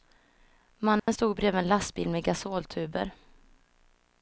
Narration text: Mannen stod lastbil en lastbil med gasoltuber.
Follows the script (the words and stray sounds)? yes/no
no